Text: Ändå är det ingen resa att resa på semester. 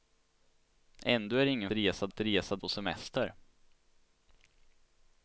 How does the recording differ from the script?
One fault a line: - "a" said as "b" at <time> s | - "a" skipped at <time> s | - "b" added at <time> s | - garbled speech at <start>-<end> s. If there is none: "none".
none